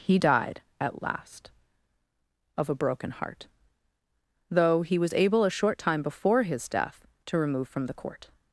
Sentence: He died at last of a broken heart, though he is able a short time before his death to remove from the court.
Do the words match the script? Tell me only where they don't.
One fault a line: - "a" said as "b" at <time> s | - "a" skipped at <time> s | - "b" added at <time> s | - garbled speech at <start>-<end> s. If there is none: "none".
- "is" said as "was" at 5.0 s